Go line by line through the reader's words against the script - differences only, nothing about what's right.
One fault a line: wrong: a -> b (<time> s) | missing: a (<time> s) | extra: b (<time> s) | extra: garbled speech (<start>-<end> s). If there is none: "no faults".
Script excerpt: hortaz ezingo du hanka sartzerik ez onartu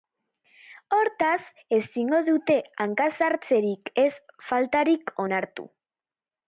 wrong: du -> dute (2.3 s)
extra: faltarik (4.5 s)